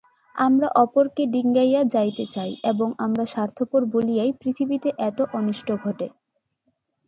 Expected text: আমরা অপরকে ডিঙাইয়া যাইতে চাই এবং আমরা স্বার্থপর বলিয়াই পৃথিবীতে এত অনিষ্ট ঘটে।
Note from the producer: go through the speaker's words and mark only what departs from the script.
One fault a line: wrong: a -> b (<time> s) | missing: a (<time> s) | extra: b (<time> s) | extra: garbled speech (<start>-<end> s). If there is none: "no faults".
no faults